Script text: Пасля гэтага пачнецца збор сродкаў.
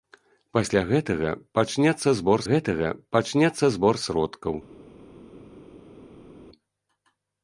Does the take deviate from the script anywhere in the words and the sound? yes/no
yes